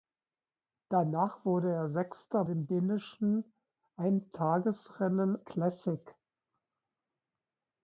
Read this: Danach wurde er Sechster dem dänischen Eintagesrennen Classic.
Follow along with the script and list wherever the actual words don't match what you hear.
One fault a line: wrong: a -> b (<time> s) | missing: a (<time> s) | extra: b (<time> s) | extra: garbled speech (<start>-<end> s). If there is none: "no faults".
no faults